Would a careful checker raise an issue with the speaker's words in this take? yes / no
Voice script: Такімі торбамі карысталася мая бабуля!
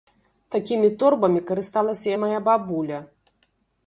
no